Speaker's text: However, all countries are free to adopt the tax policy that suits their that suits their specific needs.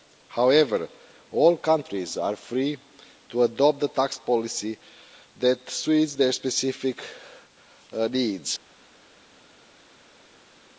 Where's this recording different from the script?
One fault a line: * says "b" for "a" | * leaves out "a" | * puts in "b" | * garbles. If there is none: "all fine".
* leaves out "that suits their"